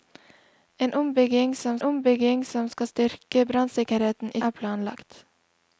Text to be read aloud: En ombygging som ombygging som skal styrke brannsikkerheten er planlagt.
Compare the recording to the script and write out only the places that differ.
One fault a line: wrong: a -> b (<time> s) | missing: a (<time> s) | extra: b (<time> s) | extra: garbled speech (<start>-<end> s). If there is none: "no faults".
no faults